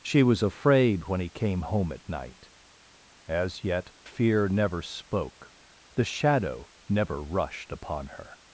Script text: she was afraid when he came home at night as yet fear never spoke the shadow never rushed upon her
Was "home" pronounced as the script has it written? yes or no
yes